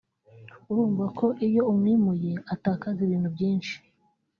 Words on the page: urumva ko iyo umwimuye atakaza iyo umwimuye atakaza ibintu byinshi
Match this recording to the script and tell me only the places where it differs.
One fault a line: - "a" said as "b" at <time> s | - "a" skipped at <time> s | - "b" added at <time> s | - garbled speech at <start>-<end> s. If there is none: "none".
- "iyo umwimuye atakaza" skipped at 3.0 s